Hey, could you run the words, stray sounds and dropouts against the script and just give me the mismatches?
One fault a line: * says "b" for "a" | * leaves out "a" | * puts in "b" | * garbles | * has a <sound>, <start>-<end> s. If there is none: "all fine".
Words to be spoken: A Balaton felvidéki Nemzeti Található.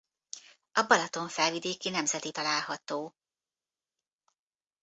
all fine